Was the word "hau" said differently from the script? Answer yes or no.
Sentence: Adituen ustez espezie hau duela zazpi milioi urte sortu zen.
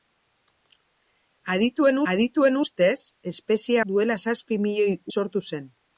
yes